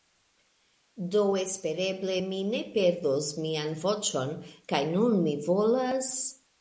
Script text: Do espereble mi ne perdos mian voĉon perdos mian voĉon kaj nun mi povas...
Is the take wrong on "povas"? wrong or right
wrong